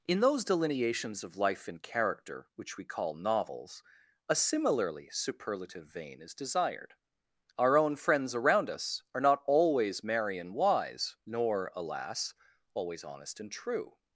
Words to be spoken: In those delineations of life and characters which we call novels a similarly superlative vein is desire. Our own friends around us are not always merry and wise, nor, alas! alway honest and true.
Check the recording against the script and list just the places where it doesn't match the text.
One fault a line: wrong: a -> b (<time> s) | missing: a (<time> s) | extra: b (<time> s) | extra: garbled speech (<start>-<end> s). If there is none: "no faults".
wrong: characters -> character (1.8 s)
wrong: desire -> desired (6.3 s)
wrong: alway -> always (12.7 s)